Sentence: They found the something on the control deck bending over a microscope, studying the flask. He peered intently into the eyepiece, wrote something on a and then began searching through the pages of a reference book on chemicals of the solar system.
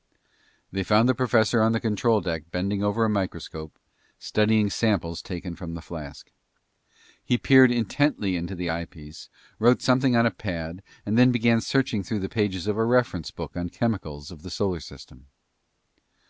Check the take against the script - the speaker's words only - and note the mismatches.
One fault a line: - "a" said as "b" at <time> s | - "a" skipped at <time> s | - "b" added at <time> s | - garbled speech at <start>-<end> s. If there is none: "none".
- "something" said as "professor" at 1.1 s
- "samples taken from" added at 4.7 s
- "pad" added at 10.3 s